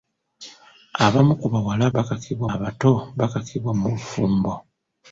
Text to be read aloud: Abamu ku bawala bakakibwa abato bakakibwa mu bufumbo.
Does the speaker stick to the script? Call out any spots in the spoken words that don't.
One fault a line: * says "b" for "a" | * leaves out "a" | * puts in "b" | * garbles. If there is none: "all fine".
all fine